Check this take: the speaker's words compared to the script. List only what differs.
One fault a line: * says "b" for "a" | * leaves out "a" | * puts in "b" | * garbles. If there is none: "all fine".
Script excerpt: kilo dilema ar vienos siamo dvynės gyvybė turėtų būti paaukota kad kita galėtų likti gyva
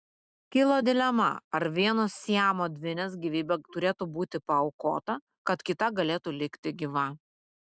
all fine